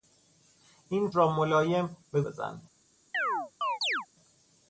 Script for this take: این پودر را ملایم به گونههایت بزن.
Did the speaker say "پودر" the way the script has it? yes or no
no